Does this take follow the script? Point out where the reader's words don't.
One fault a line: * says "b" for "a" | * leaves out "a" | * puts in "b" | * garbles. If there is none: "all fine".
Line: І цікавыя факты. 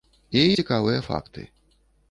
all fine